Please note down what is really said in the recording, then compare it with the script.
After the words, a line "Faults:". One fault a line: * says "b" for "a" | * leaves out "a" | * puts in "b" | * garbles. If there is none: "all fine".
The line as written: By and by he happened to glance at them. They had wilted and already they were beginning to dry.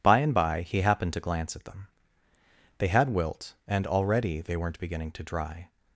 By and by he happened to glance at them. They had wilt and already they weren't beginning to dry.
Faults:
* says "wilt" for "wilted"
* says "weren't" for "were"